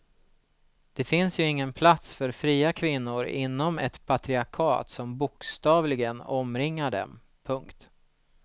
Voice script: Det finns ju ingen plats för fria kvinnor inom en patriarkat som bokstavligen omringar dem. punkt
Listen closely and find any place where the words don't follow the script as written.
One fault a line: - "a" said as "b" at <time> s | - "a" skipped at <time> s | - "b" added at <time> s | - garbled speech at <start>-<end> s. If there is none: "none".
- "en" said as "ett" at 3.8 s